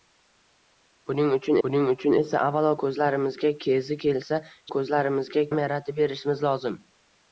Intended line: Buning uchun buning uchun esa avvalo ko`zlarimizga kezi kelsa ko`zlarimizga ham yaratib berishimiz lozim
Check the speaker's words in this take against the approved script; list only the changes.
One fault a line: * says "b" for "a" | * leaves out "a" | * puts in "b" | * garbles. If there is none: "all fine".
all fine